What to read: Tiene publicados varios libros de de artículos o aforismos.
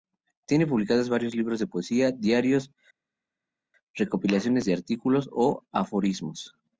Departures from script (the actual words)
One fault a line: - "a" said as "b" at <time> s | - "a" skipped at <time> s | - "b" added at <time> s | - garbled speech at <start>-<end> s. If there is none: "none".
- "poesía diarios recopilaciones" added at 1.7 s